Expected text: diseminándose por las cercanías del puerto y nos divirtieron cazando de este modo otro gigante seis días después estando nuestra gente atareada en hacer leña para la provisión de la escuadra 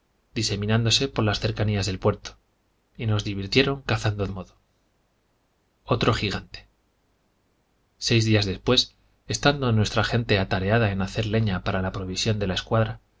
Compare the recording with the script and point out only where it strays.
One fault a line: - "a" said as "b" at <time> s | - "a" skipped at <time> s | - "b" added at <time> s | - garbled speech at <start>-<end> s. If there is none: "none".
- "de este" skipped at 4.3 s